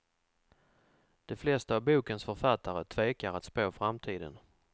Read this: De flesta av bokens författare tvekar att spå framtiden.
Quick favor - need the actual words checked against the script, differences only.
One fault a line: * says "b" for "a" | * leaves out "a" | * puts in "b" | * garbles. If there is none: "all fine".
all fine